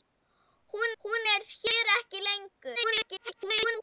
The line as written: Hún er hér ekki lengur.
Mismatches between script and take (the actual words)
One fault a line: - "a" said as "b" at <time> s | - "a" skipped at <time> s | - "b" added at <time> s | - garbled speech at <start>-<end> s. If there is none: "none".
- "hún" added at 1.0 s
- garbled speech at 2.8-3.8 s